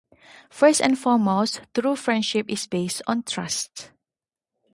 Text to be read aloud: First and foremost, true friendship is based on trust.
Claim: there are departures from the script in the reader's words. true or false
false